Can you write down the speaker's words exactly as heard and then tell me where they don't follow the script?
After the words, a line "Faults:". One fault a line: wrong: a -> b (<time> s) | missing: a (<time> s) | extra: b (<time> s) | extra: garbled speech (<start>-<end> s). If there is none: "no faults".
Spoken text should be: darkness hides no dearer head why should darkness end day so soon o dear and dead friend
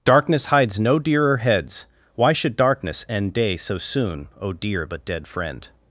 darkness hides no dearer heads why should darkness end day so soon o dear but dead friend
Faults:
wrong: head -> heads (1.4 s)
wrong: and -> but (4.9 s)